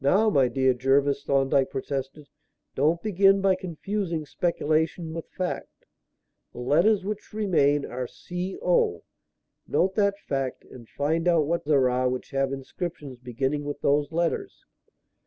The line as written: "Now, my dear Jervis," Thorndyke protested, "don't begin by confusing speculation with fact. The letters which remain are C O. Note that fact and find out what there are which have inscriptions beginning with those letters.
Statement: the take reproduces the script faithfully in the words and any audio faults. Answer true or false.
true